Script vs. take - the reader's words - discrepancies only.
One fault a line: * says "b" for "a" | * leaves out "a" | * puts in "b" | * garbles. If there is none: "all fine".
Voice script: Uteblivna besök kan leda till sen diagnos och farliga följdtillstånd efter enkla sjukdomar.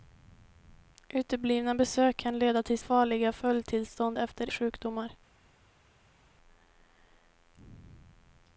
* leaves out "sen diagnos och"
* leaves out "enkla"